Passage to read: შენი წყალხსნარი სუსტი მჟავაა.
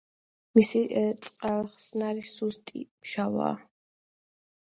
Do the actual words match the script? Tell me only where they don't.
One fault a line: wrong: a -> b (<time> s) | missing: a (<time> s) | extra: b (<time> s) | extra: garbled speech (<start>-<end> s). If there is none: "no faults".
wrong: შენი -> მისი (0.6 s)